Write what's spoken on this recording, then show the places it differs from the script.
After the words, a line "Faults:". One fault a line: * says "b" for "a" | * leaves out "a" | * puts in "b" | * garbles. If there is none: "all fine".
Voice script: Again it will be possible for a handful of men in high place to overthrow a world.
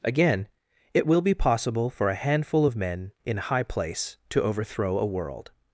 Again it will be possible for a handful of men in high place to overthrow a world.
Faults:
all fine